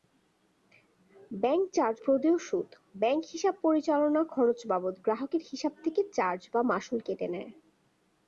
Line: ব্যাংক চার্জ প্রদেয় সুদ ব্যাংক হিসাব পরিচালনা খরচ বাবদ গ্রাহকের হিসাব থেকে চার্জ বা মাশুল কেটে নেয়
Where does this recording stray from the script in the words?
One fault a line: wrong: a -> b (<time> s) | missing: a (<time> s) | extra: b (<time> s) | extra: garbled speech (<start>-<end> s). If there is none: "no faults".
no faults